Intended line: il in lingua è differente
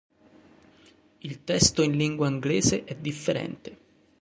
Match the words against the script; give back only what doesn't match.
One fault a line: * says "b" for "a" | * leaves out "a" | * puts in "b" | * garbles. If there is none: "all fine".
* puts in "testo"
* puts in "inglese"